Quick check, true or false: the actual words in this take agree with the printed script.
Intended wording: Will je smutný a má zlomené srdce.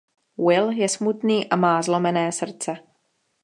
true